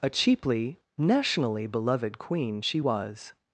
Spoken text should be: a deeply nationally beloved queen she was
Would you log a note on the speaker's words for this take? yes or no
yes